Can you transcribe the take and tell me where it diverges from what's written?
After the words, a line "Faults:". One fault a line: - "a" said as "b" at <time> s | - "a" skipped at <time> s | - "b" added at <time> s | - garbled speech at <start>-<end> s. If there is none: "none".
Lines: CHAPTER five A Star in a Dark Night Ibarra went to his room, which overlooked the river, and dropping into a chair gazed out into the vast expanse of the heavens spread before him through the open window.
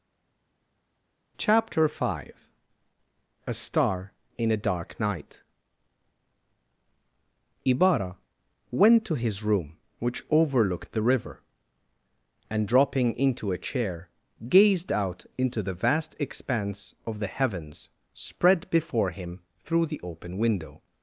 CHAPTER five A Star in a Dark Night Ibarra went to his room, which overlooked the river, and dropping into a chair gazed out into the vast expanse of the heavens spread before him through the open window.
Faults:
none